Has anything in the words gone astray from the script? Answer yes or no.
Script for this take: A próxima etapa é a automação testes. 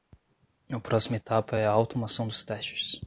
yes